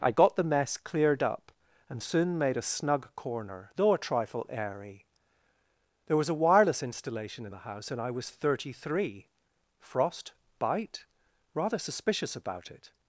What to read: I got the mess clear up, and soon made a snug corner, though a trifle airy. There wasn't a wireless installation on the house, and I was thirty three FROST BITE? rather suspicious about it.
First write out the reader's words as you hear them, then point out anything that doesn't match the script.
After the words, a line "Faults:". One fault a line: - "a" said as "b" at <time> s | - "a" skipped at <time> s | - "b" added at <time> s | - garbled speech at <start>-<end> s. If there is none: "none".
I got the mess cleared up, and soon made a snug corner, though a trifle airy. There was a wireless installation in the house, and I was thirty three FROST BITE? rather suspicious about it.
Faults:
- "clear" said as "cleared" at 0.8 s
- "wasn't" said as "was" at 6.2 s
- "on" said as "in" at 7.4 s